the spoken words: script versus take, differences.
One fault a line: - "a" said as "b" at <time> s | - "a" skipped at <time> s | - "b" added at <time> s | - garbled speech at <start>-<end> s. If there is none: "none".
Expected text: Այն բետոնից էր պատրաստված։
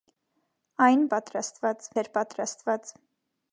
- "բետոնից" said as "պատրաստված" at 1.1 s